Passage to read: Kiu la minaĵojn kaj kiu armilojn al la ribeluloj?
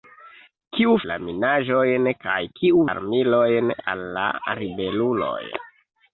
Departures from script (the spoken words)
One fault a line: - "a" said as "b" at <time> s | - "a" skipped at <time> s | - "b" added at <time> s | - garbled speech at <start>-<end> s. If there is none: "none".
none